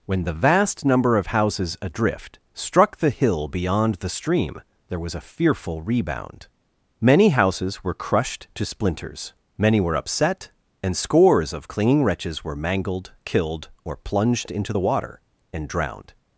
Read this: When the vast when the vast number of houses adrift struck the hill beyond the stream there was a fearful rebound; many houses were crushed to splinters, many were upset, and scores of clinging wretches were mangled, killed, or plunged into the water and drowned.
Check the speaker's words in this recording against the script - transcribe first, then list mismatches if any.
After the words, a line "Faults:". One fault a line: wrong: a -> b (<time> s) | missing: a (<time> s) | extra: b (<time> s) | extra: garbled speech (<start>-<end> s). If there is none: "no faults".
When the vast number of houses adrift struck the hill beyond the stream there was a fearful rebound; many houses were crushed to splinters, many were upset, and scores of clinging wretches were mangled, killed, or plunged into the water and drowned.
Faults:
missing: when the vast (0.8 s)